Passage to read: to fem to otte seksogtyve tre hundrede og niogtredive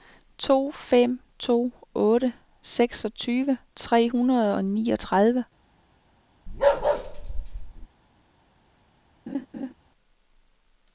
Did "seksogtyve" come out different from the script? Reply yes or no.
no